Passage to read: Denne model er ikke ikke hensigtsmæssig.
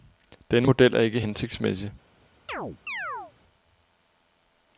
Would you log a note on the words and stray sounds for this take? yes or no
yes